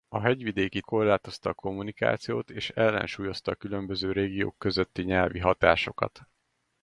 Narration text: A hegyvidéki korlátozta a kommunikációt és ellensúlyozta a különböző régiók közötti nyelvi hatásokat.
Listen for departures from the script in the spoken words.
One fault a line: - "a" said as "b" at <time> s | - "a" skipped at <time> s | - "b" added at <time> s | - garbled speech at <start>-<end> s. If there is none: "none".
none